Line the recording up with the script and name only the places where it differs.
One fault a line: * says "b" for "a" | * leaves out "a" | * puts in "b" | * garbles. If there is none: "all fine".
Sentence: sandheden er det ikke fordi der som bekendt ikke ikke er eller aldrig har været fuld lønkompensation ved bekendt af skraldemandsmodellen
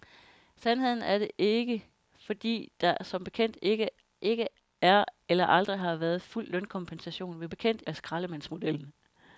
all fine